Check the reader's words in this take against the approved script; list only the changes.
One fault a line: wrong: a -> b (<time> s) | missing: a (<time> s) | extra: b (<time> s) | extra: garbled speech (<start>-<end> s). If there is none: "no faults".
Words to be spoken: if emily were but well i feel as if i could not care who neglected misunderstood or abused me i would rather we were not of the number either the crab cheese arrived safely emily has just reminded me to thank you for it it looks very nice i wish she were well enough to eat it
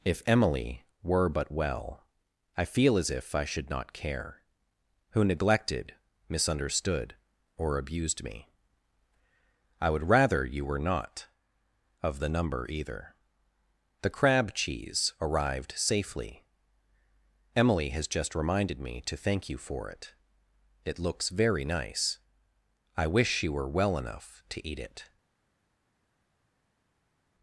wrong: could -> should (3.5 s)
wrong: we -> you (10.4 s)